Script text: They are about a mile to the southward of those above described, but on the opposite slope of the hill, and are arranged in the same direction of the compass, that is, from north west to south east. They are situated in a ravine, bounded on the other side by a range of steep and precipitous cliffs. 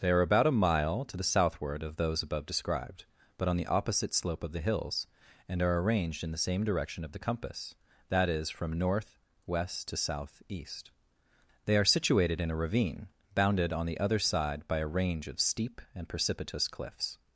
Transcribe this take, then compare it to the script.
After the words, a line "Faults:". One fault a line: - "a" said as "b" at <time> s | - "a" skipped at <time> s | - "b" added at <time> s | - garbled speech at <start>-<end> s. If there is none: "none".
They are about a mile to the southward of those above described, but on the opposite slope of the hills, and are arranged in the same direction of the compass, that is, from north west to south east. They are situated in a ravine, bounded on the other side by a range of steep and precipitous cliffs.
Faults:
- "hill" said as "hills" at 4.6 s